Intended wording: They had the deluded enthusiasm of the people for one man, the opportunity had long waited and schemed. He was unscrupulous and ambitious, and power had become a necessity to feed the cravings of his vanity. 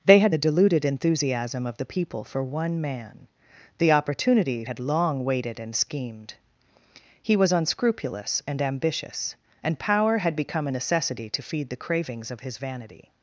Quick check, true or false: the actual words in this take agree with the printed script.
true